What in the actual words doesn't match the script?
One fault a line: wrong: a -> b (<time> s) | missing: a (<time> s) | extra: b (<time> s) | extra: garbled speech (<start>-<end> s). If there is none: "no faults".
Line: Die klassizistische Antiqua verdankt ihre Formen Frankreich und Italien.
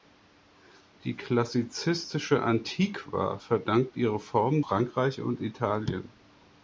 no faults